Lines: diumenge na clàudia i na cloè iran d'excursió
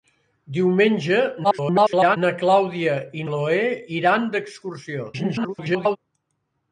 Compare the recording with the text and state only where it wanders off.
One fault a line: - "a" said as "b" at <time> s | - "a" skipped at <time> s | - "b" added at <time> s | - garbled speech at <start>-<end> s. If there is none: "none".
- garbled speech at 1.4-2.2 s
- "na" skipped at 3.3 s
- garbled speech at 5.1-6.0 s